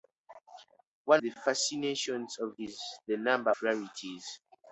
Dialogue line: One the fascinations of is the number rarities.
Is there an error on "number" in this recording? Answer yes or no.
no